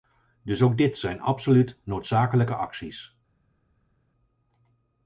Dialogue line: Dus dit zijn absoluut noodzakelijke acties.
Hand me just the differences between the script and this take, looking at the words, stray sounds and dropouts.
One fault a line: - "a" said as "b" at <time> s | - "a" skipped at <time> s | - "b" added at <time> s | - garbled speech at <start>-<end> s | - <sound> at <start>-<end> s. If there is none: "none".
- "ook" added at 0.6 s